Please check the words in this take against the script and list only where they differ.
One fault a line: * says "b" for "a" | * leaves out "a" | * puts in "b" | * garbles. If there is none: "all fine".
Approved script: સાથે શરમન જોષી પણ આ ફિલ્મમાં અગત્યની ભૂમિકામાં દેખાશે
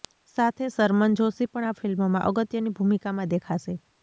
all fine